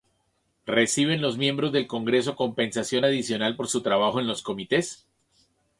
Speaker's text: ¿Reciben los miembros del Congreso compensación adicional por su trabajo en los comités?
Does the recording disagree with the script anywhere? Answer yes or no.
no